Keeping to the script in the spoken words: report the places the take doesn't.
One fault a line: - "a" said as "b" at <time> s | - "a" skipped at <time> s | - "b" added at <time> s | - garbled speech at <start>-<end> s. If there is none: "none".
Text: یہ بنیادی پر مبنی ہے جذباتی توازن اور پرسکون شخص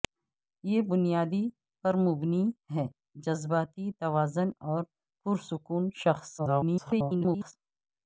- garbled speech at 6.4-7.5 s